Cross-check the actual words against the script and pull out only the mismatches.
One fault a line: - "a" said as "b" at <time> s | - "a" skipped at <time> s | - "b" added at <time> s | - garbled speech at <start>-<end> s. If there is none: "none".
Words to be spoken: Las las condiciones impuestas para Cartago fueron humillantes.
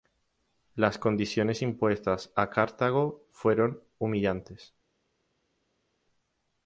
- "las" skipped at 1.0 s
- "para" said as "a" at 2.4 s